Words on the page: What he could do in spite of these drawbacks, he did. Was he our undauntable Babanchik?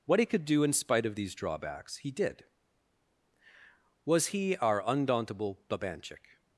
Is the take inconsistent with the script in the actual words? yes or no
no